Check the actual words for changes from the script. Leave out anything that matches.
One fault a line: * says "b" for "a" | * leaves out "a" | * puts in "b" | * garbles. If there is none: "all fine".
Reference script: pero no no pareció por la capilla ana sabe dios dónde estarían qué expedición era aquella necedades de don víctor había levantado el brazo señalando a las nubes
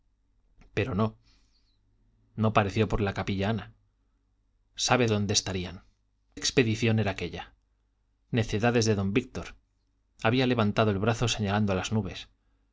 * leaves out "dios"
* leaves out "qué"